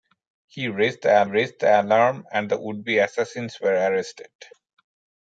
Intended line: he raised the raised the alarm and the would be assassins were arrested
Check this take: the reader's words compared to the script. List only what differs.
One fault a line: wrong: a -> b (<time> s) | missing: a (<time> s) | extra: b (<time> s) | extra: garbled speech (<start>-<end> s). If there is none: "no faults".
no faults